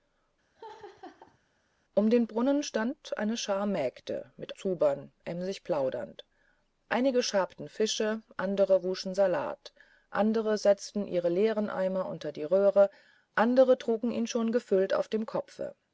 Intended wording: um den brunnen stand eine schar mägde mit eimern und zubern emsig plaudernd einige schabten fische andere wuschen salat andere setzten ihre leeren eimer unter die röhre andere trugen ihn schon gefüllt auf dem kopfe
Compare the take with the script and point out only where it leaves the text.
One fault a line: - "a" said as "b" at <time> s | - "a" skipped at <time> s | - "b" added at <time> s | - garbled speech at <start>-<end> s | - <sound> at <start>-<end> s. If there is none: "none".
- laugh at 0.5-1.4 s
- "eimern und" skipped at 4.5 s